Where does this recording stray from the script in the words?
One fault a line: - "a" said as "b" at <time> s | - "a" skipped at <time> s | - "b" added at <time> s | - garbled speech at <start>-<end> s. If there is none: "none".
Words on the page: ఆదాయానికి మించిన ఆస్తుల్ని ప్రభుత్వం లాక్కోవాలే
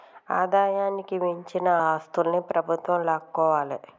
none